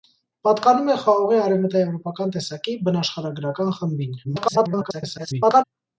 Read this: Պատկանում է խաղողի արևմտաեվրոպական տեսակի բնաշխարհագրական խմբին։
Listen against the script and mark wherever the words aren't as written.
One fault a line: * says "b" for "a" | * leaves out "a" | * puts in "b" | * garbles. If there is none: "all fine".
* garbles